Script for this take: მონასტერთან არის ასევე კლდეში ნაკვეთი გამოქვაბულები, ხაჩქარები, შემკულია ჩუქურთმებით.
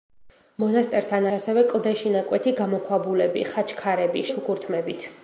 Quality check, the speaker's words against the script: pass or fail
fail